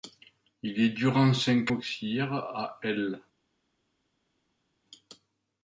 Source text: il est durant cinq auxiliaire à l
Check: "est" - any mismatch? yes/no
no